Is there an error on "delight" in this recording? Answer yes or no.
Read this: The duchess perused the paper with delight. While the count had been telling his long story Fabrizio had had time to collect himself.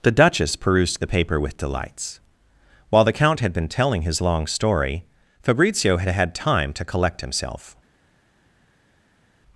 yes